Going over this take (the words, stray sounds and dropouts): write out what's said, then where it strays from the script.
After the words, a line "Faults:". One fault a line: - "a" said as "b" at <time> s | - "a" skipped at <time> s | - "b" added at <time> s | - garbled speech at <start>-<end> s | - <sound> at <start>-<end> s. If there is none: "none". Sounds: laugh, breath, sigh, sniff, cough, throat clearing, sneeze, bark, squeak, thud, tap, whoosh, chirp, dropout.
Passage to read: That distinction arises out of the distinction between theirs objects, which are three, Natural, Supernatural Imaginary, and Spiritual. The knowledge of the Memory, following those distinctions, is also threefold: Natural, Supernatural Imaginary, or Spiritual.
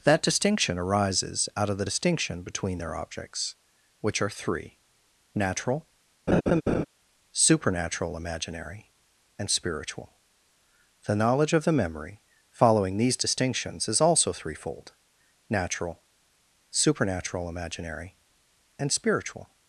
That distinction arises out of the distinction between their objects, which are three, Natural, Supernatural Imaginary, and Spiritual. The knowledge of the Memory, following these distinctions, is also threefold: Natural, Supernatural Imaginary, and Spiritual.
Faults:
- "theirs" said as "their" at 2.8 s
- laugh at 6.3-6.8 s
- "those" said as "these" at 13.0 s
- "or" said as "and" at 18.8 s